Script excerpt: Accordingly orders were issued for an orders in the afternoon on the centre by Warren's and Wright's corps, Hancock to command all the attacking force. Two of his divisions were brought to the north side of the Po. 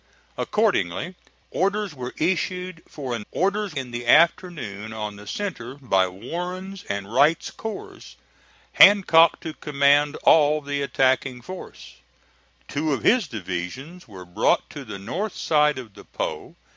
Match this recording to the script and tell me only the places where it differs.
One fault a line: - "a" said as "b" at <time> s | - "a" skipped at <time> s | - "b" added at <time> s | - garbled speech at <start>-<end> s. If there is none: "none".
none